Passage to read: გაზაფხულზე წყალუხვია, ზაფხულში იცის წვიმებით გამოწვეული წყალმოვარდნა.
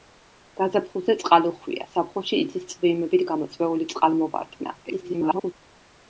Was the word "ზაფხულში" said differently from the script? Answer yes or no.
no